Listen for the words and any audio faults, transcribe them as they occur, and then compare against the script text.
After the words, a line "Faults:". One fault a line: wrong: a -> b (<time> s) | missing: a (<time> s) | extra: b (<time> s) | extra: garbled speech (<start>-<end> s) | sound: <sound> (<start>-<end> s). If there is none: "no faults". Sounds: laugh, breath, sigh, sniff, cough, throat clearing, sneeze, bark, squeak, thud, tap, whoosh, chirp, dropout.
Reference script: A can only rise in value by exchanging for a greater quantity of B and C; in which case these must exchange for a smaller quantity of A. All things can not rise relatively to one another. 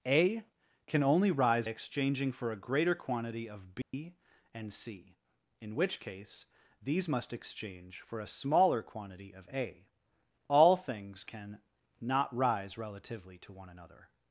A can only rise exchanging for a greater quantity of B and C; in which case these must exchange for a smaller quantity of A. All things can not rise relatively to one another.
Faults:
missing: in value by (1.7 s)
sound: dropout (3.8-3.9 s)